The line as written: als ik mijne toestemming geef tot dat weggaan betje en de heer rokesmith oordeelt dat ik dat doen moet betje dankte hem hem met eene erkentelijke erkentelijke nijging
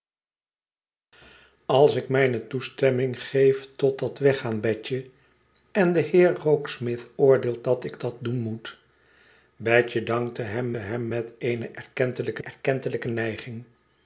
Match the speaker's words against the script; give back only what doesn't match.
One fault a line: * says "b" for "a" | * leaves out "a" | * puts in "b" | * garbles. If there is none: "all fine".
all fine